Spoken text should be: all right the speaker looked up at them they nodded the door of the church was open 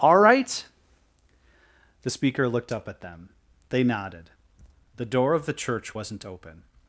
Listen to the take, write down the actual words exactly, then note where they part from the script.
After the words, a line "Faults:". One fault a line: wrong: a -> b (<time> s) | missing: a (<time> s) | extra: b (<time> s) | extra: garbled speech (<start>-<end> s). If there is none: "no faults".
all right the speaker looked up at them they nodded the door of the church wasn't open
Faults:
wrong: was -> wasn't (5.9 s)